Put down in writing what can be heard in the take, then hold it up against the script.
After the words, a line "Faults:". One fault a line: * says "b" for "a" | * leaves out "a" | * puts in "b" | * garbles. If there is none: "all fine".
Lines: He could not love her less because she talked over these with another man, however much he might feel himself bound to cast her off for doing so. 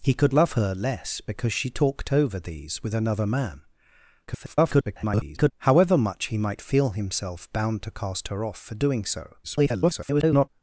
He could love her less because she talked over these with another man, [garbled] however much he might feel himself bound to cast her off for doing so. [garbled]
Faults:
* leaves out "not"
* garbles
* garbles